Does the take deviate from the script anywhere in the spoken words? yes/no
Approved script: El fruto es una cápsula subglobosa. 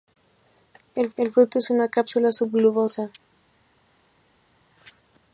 yes